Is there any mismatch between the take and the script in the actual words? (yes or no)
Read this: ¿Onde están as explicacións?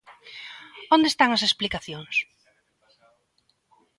no